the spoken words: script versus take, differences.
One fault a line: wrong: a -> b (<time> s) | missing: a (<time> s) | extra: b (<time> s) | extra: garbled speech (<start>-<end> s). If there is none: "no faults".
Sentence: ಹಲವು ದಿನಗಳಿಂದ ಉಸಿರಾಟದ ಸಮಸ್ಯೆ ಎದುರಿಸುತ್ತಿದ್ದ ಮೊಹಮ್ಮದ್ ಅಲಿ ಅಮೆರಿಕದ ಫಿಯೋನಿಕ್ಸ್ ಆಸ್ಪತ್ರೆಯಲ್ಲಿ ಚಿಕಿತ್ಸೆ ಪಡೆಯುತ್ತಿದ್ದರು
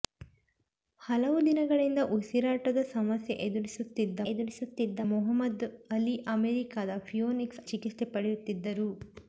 extra: ಎದುರಿಸುತ್ತಿದ್ದ (4.3 s)
missing: ಆಸ್ಪತ್ರೆಯಲ್ಲಿ (7.6 s)